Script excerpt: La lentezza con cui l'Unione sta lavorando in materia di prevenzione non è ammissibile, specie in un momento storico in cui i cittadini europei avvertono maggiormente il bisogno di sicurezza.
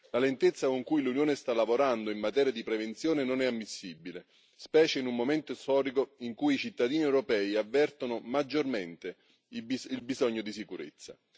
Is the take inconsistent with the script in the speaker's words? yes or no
no